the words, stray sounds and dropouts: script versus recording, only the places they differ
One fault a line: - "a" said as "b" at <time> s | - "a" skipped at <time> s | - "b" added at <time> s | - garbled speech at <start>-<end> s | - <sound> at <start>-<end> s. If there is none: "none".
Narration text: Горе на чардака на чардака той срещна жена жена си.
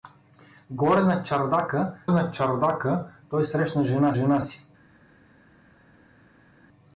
none